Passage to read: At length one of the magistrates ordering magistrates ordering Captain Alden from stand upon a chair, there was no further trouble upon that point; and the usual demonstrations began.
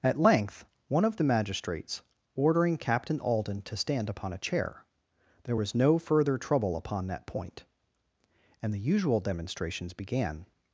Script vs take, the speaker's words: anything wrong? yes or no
yes